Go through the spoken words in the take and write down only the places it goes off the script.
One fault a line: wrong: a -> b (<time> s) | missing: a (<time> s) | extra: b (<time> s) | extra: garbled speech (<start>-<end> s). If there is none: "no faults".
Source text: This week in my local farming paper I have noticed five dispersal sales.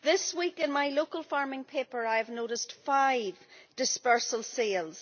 no faults